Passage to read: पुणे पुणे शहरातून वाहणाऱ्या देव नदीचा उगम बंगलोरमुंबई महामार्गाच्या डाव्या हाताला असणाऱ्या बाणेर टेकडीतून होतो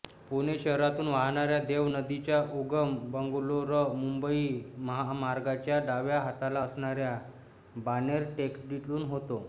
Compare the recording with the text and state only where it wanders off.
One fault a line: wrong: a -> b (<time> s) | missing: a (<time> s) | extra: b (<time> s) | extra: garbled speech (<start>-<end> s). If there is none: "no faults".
missing: पुणे (0.6 s)